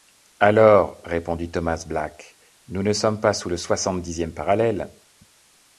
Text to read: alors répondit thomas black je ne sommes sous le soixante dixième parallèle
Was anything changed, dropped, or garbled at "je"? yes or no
yes